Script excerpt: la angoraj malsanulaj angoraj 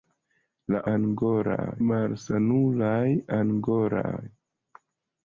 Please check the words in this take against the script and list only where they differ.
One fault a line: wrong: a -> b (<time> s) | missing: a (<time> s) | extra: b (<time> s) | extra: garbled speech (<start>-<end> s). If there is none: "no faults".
no faults